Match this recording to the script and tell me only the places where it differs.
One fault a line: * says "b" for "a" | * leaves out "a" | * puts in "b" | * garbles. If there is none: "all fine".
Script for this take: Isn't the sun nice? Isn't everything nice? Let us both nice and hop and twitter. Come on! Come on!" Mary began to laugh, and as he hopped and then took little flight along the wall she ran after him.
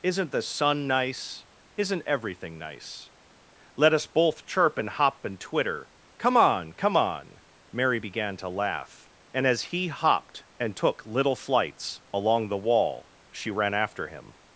* says "chirp" for "nice"
* leaves out "then"
* says "flights" for "flight"